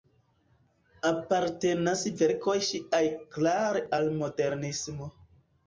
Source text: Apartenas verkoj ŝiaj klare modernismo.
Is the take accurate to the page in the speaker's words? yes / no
no